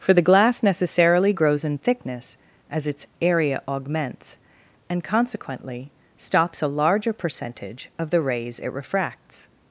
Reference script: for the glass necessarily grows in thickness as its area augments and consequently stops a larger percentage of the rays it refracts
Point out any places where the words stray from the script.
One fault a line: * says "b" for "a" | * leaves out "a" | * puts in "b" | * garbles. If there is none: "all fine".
all fine